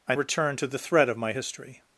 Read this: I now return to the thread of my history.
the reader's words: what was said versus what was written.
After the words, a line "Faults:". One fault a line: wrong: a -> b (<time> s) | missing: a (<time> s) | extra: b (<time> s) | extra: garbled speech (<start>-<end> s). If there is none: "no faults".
I return to the thread of my history.
Faults:
missing: now (0.1 s)